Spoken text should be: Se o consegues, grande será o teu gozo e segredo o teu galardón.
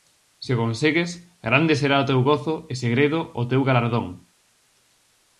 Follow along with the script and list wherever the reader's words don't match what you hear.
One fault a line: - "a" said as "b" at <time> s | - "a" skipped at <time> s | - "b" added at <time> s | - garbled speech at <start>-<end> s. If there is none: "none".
none